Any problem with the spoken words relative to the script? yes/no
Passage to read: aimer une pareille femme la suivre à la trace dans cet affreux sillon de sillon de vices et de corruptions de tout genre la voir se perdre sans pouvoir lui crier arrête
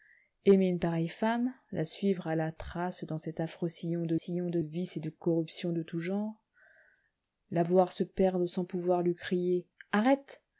no